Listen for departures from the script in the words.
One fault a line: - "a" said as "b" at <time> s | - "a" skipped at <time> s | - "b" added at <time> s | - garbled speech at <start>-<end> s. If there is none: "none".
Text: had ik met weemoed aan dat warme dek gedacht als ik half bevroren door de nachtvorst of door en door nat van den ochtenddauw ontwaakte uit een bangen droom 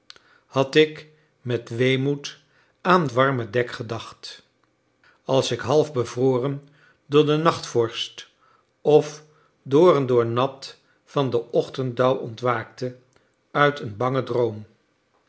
- "dat" skipped at 3.1 s